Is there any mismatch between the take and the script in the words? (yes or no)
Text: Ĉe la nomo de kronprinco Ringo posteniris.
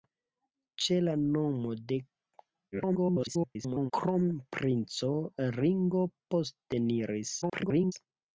yes